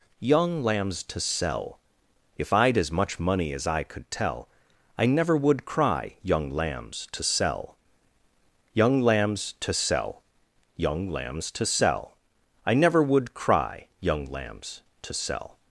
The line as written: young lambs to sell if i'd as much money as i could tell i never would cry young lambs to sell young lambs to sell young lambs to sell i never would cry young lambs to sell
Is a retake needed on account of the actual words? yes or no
no